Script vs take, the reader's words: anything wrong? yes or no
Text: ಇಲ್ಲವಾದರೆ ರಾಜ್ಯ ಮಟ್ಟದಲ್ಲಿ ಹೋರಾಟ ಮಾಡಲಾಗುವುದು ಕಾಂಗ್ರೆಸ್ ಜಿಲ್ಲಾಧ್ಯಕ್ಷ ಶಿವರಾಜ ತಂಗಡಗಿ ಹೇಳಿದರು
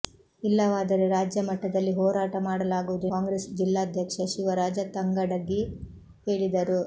no